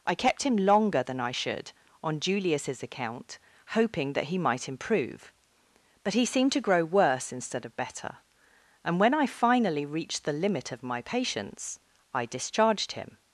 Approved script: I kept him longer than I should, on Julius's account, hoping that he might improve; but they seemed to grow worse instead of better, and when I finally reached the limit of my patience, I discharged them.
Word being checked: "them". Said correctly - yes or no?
no